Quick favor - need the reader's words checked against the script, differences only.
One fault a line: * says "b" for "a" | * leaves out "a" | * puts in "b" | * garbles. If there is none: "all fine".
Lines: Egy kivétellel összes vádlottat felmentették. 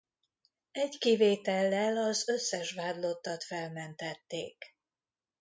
* puts in "az"